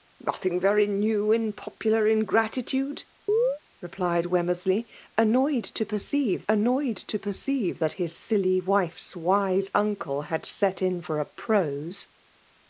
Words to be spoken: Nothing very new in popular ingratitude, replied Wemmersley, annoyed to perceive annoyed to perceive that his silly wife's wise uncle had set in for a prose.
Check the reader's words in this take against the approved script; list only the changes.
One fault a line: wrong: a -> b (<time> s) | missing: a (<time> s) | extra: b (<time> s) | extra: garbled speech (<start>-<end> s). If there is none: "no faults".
no faults